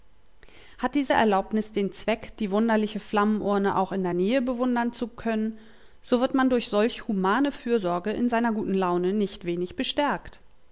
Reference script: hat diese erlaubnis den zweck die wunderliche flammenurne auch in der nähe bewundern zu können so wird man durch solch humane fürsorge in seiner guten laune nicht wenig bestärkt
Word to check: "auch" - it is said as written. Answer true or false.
true